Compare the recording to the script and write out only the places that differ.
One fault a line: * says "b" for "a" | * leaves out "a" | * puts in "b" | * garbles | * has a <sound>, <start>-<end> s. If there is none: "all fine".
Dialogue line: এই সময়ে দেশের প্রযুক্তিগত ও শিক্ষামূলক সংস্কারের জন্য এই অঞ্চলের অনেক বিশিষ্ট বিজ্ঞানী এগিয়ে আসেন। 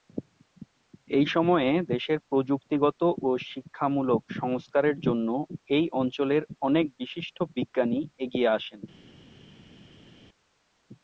all fine